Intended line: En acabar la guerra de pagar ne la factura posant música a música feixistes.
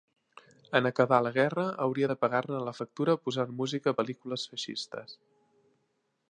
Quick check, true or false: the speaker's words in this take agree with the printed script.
false